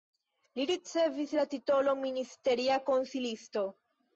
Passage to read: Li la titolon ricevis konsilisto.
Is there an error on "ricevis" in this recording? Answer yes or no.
yes